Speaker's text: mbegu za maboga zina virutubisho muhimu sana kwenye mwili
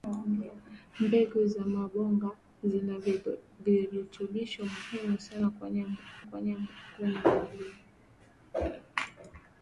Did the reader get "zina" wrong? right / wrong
right